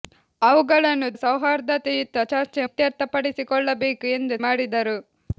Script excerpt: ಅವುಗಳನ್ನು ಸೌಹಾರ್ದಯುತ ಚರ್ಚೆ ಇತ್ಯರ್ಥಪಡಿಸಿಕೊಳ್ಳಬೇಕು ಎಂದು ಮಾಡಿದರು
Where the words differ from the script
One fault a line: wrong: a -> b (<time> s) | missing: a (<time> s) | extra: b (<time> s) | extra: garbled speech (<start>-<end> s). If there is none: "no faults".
no faults